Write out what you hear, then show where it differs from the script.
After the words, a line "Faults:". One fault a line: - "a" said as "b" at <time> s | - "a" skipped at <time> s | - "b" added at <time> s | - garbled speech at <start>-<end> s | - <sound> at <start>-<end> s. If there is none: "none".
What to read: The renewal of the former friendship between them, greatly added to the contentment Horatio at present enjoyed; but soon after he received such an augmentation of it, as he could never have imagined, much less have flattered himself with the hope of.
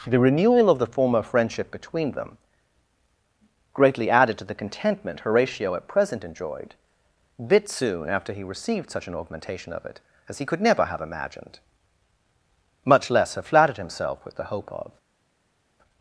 The renewal of the former friendship between them, greatly added to the contentment Horatio at present enjoyed; bit soon after he received such an augmentation of it, as he could never have imagined, much less have flattered himself with the hope of.
Faults:
- "but" said as "bit" at 7.5 s